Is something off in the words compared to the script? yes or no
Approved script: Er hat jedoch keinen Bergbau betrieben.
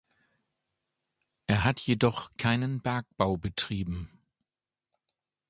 no